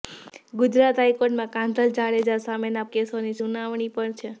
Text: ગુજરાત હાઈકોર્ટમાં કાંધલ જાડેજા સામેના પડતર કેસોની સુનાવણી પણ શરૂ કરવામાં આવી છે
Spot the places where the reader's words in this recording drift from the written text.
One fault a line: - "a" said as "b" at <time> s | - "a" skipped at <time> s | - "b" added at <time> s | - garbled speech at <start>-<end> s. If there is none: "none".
- "પડતર" skipped at 2.9 s
- "શરૂ કરવામાં આવી" skipped at 4.2 s